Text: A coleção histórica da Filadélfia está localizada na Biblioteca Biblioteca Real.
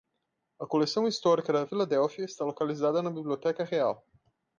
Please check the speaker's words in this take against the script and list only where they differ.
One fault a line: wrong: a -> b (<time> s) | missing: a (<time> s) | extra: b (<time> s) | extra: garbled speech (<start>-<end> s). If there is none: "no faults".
missing: Biblioteca (3.6 s)